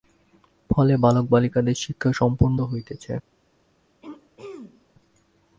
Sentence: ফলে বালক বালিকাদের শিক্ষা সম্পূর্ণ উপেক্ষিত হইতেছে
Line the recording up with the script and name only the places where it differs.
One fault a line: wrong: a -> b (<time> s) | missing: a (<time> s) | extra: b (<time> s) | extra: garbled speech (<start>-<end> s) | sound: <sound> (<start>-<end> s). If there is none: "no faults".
missing: উপেক্ষিত (2.6 s)
sound: throat clearing (4.0-4.9 s)